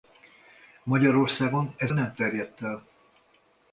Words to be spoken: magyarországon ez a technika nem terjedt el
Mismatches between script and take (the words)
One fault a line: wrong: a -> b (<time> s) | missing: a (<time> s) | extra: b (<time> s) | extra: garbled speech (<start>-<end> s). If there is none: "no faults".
missing: a technika (1.9 s)